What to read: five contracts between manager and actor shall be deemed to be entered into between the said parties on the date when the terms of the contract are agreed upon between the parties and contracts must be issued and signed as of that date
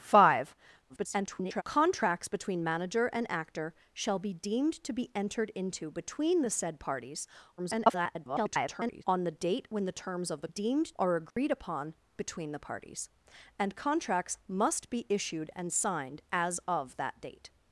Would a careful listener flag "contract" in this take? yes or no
yes